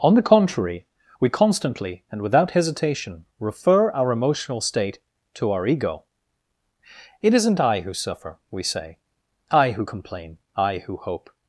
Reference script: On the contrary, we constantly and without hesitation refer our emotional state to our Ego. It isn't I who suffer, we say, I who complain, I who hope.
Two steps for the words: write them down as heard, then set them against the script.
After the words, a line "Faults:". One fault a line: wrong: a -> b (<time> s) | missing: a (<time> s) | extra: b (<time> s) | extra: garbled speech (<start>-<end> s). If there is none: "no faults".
On the contrary, we constantly and without hesitation refer our emotional state to our Ego. It isn't I who suffer, we say, I who complain, I who hope.
Faults:
no faults